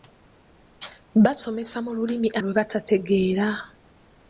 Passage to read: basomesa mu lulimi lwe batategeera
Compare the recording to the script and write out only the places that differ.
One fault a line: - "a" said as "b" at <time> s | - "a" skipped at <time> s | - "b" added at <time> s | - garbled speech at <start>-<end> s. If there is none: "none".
none